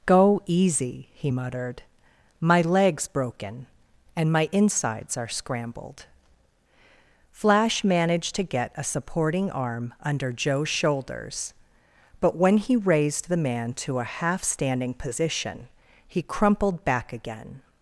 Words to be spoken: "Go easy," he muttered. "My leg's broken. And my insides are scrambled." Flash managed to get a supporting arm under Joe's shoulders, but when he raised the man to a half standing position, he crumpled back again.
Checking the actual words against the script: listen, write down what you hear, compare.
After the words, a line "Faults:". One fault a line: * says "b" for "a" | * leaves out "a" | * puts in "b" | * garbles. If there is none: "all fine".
"Go easy," he muttered. "My leg's broken. And my insides are scrambled." Flash managed to get a supporting arm under Joe's shoulders, but when he raised the man to a half standing position, he crumpled back again.
Faults:
all fine